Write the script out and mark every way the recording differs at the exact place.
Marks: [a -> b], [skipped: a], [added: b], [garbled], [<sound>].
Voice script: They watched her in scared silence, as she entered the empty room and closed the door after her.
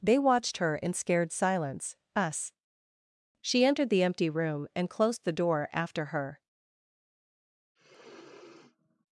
They watched her in scared silence, [as -> us] she entered the empty room and closed the door after her. [sniff]